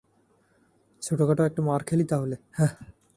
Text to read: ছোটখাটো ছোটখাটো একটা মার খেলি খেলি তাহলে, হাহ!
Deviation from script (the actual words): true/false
true